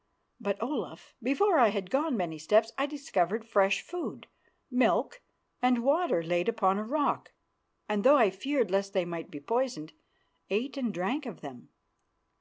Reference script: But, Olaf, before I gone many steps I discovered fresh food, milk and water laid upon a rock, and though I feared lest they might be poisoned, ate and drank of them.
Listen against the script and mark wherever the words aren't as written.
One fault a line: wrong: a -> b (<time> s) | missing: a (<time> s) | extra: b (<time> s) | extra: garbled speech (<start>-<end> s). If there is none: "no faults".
extra: had (1.7 s)